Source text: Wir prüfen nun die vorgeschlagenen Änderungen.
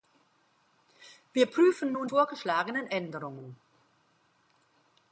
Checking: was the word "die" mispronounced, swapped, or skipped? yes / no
yes